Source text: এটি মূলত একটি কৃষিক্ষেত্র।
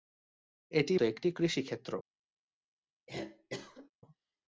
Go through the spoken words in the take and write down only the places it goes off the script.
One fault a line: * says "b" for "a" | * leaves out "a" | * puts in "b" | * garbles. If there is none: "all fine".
* leaves out "মূলত"